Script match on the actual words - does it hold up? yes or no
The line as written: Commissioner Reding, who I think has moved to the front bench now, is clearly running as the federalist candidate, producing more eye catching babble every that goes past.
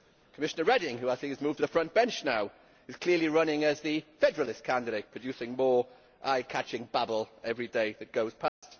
no